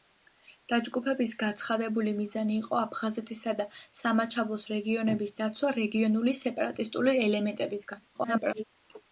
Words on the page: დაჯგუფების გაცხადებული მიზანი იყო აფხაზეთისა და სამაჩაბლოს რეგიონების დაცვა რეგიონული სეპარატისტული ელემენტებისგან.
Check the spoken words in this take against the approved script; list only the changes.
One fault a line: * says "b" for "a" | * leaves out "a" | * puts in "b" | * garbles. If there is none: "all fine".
* garbles